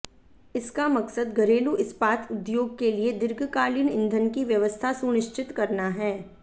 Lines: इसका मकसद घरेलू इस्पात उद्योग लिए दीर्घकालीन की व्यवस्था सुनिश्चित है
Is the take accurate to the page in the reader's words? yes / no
no